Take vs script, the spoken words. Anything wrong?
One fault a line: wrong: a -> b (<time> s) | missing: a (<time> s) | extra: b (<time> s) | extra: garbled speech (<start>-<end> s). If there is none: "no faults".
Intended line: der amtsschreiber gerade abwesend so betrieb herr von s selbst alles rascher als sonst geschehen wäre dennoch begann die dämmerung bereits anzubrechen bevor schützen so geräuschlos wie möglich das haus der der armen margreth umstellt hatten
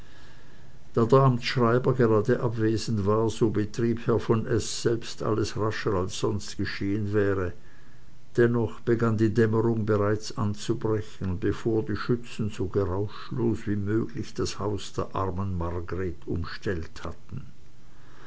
extra: war (3.0 s)
extra: die (11.8 s)
missing: der (15.1 s)